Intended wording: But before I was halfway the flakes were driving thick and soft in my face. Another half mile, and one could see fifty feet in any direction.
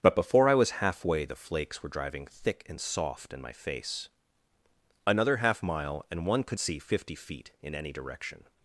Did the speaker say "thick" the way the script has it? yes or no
yes